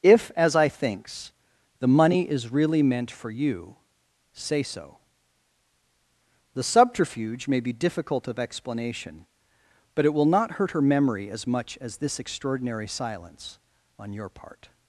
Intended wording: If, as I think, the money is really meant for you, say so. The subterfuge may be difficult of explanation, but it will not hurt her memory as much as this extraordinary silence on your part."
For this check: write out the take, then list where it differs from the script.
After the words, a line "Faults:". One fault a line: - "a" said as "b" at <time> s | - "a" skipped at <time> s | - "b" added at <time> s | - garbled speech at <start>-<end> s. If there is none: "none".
If, as I thinks, the money is really meant for you, say so. The subterfuge may be difficult of explanation, but it will not hurt her memory as much as this extraordinary silence on your part."
Faults:
- "think" said as "thinks" at 0.7 s